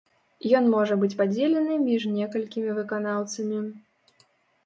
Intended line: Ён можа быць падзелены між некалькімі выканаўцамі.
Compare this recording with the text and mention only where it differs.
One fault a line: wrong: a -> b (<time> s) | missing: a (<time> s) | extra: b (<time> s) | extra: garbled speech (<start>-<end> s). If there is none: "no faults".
no faults